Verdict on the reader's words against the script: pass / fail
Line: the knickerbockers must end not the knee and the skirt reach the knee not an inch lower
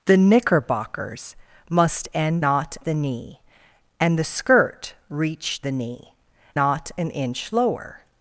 pass